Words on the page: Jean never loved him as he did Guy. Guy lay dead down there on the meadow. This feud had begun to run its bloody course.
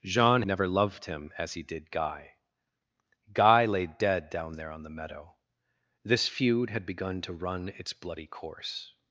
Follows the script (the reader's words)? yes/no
yes